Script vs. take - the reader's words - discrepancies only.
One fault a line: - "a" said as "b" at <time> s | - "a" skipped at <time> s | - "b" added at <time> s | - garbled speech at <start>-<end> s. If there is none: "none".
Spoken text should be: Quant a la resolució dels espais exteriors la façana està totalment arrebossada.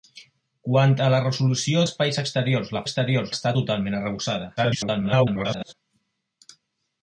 - "dels" skipped at 1.8 s
- "façana" said as "exteriors" at 2.8 s
- garbled speech at 4.6-5.7 s